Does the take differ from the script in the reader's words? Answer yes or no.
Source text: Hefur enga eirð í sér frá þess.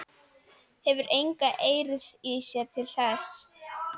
yes